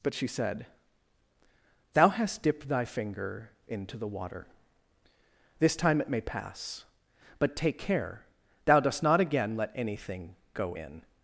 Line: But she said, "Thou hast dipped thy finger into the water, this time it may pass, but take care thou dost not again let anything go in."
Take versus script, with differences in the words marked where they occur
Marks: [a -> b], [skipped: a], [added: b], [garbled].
But she said, "Thou hast dipped thy finger into the water, this time it may pass, but take care thou dost not again let anything go in."